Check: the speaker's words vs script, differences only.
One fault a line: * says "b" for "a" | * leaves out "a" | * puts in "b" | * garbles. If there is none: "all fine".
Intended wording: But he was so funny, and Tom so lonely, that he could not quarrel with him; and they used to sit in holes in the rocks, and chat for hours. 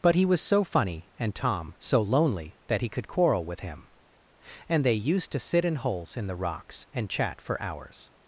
* leaves out "not"